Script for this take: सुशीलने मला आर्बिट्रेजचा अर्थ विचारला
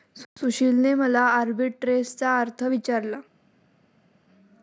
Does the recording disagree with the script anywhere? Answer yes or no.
no